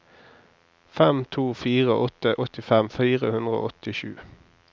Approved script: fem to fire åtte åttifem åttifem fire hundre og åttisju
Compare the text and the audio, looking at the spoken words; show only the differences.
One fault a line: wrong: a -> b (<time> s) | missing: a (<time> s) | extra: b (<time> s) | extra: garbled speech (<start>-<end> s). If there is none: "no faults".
missing: åttifem (2.9 s)